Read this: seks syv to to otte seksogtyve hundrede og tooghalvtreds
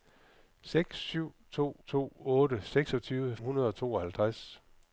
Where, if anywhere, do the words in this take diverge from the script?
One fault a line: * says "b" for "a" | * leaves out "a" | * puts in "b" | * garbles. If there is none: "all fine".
all fine